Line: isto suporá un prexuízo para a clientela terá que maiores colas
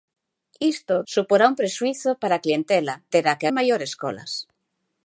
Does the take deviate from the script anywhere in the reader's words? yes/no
no